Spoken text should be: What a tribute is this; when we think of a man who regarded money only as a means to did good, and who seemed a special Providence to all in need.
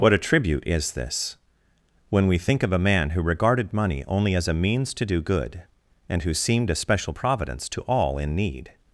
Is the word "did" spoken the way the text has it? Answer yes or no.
no